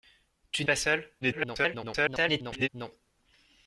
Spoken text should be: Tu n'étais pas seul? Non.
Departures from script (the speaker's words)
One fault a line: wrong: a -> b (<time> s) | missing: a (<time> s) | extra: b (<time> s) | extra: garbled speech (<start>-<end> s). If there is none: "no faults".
missing: n'étais (0.7 s)
extra: garbled speech (1.2-2.7 s)